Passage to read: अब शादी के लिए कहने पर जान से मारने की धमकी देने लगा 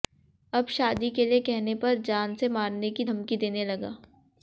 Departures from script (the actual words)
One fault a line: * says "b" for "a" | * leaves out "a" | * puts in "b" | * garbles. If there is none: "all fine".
all fine